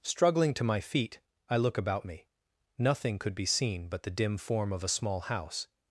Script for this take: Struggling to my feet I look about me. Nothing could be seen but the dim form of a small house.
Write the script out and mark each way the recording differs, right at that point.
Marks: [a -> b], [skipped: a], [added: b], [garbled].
Struggling to my feet I look about me. Nothing could be seen but the dim form of a small house.